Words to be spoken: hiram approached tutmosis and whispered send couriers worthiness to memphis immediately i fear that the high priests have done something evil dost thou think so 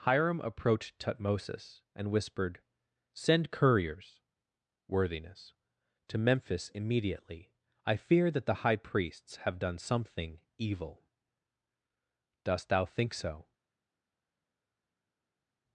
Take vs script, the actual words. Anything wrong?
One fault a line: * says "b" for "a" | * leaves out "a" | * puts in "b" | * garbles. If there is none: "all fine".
all fine